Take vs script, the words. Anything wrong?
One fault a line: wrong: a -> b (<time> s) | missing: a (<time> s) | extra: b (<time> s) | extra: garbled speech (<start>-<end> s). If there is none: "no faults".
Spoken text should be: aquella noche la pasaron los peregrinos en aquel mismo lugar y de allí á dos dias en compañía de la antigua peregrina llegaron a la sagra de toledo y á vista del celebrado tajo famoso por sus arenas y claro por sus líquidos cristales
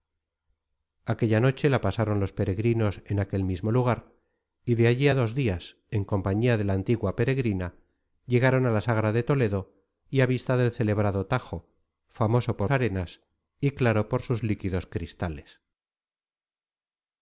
missing: sus (12.7 s)